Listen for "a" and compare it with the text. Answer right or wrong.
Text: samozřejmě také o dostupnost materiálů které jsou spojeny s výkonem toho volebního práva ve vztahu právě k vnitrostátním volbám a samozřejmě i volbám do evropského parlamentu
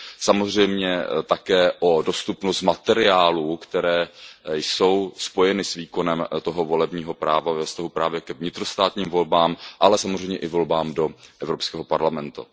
wrong